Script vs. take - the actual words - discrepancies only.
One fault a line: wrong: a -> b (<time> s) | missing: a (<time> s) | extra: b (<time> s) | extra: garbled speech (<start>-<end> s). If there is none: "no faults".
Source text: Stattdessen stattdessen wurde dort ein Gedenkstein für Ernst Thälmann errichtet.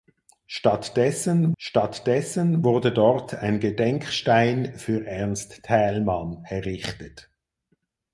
no faults